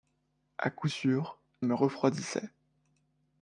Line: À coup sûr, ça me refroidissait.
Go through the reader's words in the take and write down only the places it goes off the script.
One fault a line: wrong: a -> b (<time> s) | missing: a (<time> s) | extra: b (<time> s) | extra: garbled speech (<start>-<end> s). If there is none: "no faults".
missing: ça (1.4 s)